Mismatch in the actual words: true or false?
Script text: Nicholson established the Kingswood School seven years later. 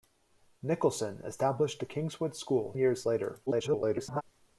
true